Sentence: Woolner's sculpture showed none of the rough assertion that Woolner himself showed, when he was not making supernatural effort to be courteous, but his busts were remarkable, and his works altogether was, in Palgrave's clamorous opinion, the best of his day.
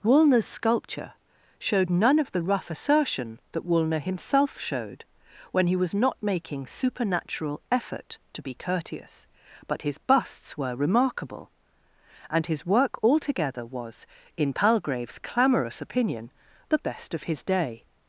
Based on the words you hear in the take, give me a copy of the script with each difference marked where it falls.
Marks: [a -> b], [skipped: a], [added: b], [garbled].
Woolner's sculpture showed none of the rough assertion that Woolner himself showed, when he was not making supernatural effort to be courteous, but his busts were remarkable, and his [works -> work] altogether was, in Palgrave's clamorous opinion, the best of his day.